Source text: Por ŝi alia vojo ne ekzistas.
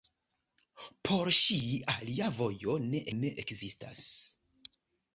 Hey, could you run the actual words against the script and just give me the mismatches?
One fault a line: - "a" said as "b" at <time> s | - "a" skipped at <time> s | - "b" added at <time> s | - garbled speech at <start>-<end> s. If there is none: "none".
- "ne" added at 3.2 s